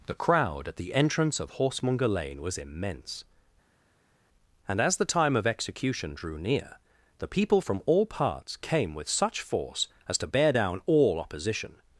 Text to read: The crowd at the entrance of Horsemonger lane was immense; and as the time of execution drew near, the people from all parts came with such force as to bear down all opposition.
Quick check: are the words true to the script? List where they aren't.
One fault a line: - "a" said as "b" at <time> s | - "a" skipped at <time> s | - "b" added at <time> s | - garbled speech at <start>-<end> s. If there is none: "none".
none